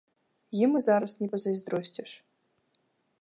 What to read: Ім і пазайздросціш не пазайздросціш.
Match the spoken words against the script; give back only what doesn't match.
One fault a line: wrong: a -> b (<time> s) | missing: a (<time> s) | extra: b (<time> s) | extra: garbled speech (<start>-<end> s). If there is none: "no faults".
wrong: пазайздросціш -> зараз (0.8 s)